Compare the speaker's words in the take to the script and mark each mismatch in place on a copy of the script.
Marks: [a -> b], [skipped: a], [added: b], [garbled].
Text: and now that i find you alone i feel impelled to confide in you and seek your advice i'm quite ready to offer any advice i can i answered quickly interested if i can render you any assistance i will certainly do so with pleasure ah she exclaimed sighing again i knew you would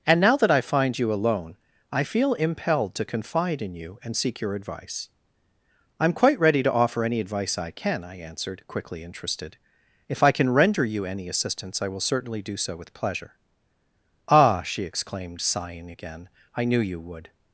and now that i find you alone i feel impelled to confide in you and seek your advice i'm quite ready to offer any advice i can i answered quickly interested if i can render you any assistance i will certainly do so with pleasure ah she exclaimed sighing again i knew you would